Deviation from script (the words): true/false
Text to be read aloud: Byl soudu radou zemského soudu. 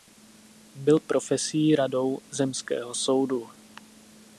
true